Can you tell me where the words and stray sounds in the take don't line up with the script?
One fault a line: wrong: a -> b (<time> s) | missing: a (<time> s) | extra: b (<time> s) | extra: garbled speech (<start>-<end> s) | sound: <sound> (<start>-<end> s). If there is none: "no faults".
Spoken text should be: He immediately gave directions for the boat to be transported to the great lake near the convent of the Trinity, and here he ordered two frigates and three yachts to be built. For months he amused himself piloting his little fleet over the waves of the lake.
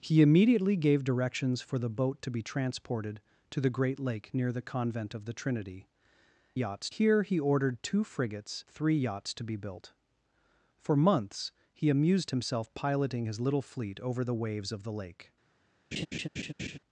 wrong: and -> yachts (6.5 s)
missing: and (8.6 s)
sound: laugh (15.9-16.8 s)